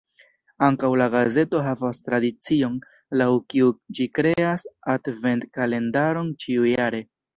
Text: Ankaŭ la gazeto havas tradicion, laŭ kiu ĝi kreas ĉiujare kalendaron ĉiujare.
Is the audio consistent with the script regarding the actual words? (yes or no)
no